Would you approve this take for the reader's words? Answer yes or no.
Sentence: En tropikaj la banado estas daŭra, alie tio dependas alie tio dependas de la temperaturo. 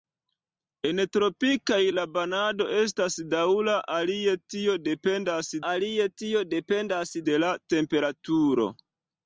yes